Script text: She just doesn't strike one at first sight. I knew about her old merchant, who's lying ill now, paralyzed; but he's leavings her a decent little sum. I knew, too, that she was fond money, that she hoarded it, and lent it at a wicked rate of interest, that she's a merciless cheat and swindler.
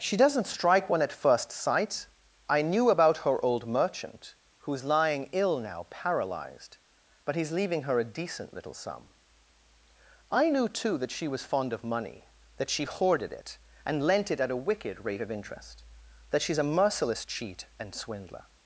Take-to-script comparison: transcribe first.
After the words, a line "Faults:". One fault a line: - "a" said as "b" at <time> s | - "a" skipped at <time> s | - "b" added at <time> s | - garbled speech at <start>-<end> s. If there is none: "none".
She doesn't strike one at first sight. I knew about her old merchant, who's lying ill now, paralyzed; but he's leaving her a decent little sum. I knew, too, that she was fond of money, that she hoarded it, and lent it at a wicked rate of interest, that she's a merciless cheat and swindler.
Faults:
- "just" skipped at 0.2 s
- "leavings" said as "leaving" at 7.5 s
- "of" added at 11.7 s